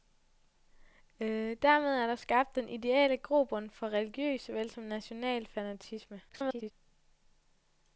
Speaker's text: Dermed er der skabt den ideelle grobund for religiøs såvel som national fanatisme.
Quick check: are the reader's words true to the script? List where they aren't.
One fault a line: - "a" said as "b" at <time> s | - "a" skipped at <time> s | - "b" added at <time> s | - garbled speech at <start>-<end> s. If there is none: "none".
- garbled speech at 6.3-6.7 s